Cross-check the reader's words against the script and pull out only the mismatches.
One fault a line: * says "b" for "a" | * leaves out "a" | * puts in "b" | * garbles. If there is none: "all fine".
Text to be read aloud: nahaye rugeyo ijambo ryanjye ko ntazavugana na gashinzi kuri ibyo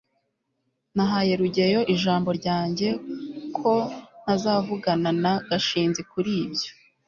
all fine